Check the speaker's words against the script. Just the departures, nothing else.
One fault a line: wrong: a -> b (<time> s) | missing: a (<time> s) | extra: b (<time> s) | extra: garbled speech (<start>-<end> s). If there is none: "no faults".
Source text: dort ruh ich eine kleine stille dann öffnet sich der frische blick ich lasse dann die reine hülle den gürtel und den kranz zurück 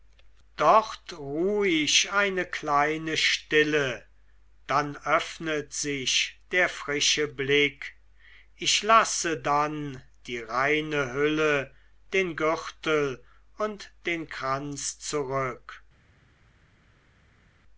no faults